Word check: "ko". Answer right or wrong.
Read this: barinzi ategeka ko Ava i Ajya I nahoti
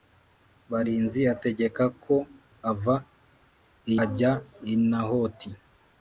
right